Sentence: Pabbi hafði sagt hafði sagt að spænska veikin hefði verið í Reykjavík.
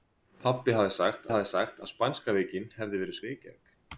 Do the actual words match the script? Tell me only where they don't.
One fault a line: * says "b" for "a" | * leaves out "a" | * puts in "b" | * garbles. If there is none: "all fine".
all fine